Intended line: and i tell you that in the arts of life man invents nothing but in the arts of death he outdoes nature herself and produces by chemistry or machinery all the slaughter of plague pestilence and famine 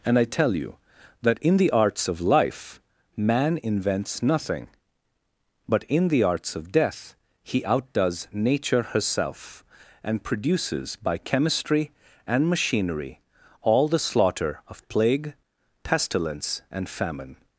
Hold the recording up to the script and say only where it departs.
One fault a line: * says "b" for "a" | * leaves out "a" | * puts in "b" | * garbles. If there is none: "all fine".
* says "and" for "or"